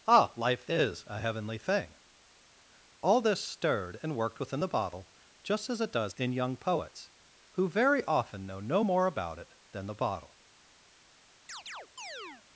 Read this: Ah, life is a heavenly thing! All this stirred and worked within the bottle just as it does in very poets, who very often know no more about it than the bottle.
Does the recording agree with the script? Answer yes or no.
no